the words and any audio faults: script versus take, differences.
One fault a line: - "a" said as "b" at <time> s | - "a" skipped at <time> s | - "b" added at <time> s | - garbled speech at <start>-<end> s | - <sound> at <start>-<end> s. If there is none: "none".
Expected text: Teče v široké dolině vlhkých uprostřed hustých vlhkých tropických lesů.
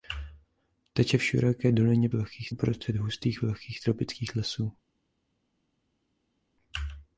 none